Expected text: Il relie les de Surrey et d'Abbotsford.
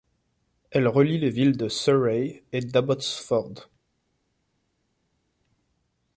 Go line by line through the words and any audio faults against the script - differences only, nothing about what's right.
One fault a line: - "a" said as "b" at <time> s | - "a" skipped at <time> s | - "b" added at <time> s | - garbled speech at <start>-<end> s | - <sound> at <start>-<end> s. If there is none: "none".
- "Il" said as "Elle" at 0.7 s
- "villes" added at 1.3 s